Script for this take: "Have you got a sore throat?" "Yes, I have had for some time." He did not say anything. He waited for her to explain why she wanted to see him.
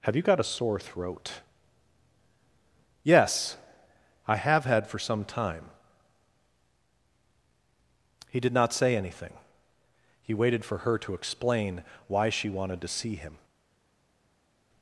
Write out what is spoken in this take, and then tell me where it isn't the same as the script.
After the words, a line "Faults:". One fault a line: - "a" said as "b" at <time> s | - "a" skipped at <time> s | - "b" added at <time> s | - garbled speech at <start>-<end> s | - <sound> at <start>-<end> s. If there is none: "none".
"Have you got a sore throat?" "Yes, I have had for some time." He did not say anything. He waited for her to explain why she wanted to see him.
Faults:
none